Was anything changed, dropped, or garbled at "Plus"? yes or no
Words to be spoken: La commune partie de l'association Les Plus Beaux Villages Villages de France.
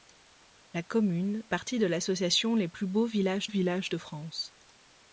no